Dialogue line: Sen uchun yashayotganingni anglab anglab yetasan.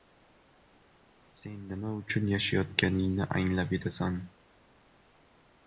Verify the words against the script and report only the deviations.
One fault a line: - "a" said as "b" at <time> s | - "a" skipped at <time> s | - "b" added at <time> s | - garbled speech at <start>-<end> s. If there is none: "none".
- "nima" added at 1.7 s
- "anglab" skipped at 3.8 s